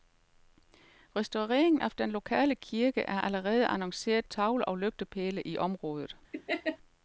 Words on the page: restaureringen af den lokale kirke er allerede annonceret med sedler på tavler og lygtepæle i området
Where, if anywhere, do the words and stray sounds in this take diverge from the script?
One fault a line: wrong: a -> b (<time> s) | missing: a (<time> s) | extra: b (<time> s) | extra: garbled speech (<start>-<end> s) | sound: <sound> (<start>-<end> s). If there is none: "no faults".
missing: med sedler på (4.3 s)
sound: laugh (6.3-6.8 s)